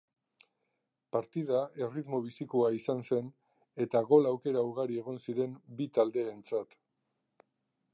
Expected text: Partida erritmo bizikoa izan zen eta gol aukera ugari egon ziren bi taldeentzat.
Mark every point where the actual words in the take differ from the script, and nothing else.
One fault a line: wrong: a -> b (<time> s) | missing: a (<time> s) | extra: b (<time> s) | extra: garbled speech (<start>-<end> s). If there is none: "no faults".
no faults